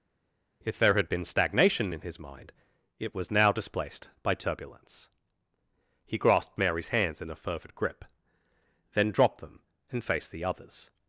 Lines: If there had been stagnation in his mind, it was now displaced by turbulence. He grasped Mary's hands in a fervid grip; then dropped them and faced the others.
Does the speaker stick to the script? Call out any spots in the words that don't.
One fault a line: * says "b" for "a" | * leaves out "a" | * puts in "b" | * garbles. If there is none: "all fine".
all fine